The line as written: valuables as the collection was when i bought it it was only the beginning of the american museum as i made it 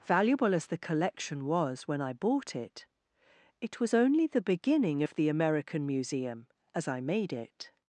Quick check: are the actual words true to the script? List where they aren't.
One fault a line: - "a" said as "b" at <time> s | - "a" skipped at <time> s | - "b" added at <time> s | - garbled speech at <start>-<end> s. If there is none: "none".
- "valuables" said as "valuable" at 0.0 s